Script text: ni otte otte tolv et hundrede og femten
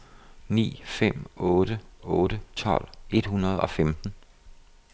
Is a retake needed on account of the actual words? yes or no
yes